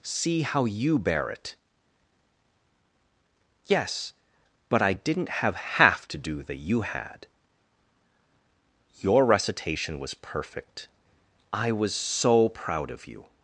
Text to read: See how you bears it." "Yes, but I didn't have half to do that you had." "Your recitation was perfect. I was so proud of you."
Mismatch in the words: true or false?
true